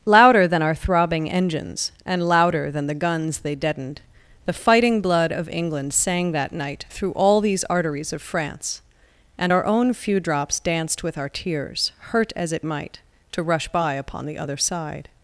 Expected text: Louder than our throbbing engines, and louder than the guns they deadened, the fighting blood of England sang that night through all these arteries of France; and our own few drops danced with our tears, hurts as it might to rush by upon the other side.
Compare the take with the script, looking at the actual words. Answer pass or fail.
fail